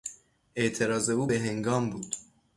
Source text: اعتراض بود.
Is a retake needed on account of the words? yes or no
yes